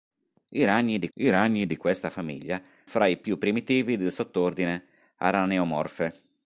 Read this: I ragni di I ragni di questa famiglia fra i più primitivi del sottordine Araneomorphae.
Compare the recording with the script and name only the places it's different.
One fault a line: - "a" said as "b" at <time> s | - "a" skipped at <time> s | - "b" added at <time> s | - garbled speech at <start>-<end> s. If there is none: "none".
none